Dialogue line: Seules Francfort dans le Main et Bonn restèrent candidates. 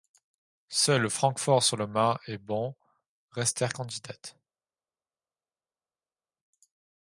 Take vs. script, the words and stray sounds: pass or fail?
fail